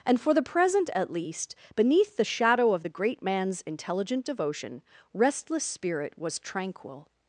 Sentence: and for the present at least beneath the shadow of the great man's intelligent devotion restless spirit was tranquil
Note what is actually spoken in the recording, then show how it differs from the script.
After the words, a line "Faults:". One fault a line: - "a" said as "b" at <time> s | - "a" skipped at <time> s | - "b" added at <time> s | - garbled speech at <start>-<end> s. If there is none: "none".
and for the present at least beneath the shadow of the great man's intelligent devotion restless spirit was tranquil
Faults:
none